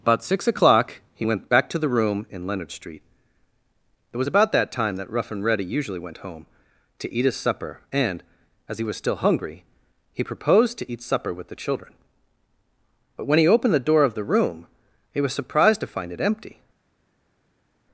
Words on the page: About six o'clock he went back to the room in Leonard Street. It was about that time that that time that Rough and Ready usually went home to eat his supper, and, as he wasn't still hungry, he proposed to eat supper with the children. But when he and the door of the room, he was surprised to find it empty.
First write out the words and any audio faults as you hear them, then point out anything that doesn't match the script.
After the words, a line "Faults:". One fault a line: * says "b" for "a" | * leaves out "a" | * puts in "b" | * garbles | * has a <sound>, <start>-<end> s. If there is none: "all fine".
About six o'clock he went back to the room in Leonard Street. It was about that time that Rough and Ready usually went home to eat his supper, and, as he was still hungry, he proposed to eat supper with the children. But when he opened the door of the room, he was surprised to find it empty.
Faults:
* leaves out "that time that"
* says "was" for "wasn't"
* says "opened" for "and"